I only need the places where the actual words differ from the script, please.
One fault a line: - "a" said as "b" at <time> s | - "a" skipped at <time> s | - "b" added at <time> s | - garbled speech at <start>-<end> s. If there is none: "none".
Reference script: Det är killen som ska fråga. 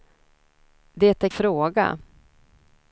- "killen som ska" skipped at 1.3 s